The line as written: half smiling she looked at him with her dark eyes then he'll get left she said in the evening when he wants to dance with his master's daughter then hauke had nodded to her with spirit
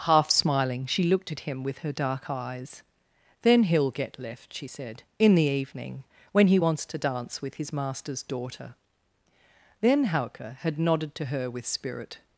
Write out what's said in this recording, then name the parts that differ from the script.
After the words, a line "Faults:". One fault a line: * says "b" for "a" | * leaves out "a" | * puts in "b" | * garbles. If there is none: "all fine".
half smiling she looked at him with her dark eyes then he'll get left she said in the evening when he wants to dance with his master's daughter then hauke had nodded to her with spirit
Faults:
all fine